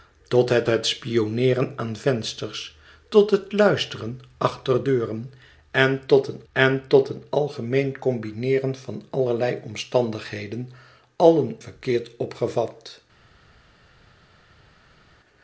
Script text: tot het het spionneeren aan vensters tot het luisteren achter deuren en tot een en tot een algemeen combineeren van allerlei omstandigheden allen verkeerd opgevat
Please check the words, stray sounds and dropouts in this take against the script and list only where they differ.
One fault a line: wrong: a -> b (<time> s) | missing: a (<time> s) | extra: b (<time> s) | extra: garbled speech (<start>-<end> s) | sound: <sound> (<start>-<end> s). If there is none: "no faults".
no faults